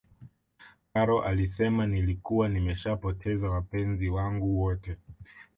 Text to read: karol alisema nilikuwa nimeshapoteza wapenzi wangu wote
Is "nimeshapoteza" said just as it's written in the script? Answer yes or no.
yes